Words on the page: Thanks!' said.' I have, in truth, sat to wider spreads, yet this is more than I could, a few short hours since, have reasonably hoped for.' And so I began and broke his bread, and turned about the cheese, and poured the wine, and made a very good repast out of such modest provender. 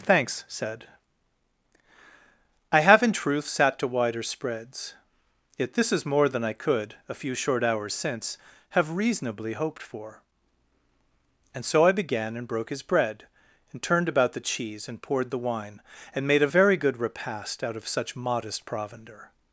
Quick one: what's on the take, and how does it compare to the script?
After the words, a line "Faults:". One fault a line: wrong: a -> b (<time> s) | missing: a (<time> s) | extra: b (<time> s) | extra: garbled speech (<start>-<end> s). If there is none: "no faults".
Thanks!' said.' I have, in truth, sat to wider spreads, yet this is more than I could, a few short hours since, have reasonably hoped for.' And so I began and broke his bread, and turned about the cheese, and poured the wine, and made a very good repast out of such modest provender.
Faults:
no faults